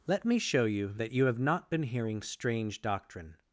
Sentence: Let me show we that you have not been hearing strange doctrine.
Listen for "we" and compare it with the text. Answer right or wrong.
wrong